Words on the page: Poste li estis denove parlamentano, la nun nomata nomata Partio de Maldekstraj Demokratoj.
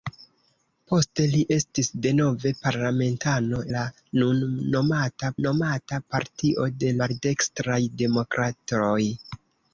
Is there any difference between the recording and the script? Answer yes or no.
no